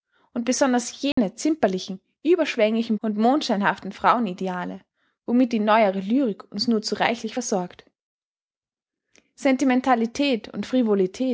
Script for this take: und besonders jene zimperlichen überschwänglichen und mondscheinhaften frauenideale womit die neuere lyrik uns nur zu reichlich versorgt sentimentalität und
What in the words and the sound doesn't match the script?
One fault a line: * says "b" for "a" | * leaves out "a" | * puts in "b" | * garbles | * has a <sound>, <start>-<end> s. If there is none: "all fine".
* has a dropout, 1.1-1.2 s